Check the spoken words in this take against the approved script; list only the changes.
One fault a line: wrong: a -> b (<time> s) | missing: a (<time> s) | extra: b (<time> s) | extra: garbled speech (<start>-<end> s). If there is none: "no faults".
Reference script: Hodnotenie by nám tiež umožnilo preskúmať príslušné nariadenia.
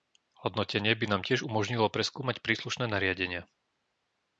no faults